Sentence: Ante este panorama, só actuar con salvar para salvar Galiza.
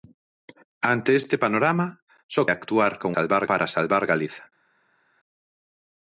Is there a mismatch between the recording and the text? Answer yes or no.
no